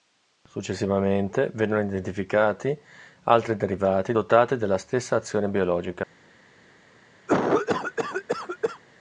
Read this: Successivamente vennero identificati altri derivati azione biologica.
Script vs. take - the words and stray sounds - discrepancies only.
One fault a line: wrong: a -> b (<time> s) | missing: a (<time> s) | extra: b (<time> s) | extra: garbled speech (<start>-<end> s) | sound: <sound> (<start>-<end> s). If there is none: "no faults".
extra: dotati della stessa (4.1 s)
sound: cough (7.3-8.8 s)